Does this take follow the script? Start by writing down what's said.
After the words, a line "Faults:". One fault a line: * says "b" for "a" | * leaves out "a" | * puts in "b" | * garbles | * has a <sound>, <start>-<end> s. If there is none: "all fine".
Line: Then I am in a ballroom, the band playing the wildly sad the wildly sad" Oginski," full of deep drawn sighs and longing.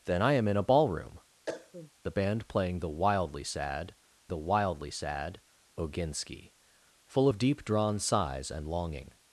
Then I am in a ballroom, the band playing the wildly sad the wildly sad" Oginski," full of deep drawn sighs and longing.
Faults:
* has a cough, 1.5-1.9 s